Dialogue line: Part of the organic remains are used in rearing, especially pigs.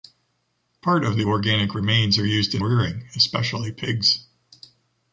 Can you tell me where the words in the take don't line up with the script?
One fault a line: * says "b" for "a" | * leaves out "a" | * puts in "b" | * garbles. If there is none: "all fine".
all fine